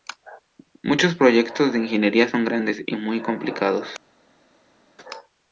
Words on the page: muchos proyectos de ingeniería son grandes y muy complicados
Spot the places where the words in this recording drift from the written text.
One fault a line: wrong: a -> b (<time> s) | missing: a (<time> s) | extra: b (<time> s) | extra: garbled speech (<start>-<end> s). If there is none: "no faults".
no faults